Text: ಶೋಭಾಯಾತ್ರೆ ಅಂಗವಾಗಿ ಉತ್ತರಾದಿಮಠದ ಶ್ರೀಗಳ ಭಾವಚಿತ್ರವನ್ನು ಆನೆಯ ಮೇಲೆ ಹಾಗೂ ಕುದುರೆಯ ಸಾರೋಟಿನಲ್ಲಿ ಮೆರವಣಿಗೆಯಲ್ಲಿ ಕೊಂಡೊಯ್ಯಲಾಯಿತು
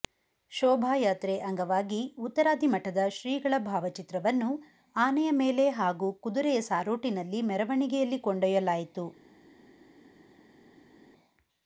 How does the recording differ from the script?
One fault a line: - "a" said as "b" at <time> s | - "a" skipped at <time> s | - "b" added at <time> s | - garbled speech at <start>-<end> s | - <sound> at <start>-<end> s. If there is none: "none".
none